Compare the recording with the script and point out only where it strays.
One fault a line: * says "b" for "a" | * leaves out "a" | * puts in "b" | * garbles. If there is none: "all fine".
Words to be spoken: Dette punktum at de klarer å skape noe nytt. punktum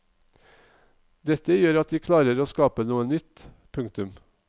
* says "gjør" for "punktum"